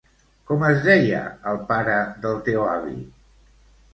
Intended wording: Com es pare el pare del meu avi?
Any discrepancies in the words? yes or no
yes